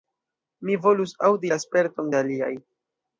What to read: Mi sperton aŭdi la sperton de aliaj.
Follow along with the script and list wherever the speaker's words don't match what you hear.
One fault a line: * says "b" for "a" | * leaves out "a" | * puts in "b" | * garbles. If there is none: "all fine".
* says "volus" for "sperton"